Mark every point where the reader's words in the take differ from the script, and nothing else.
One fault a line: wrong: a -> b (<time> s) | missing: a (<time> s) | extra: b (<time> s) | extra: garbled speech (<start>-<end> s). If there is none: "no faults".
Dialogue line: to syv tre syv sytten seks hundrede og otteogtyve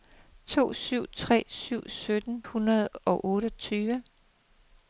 missing: seks (2.4 s)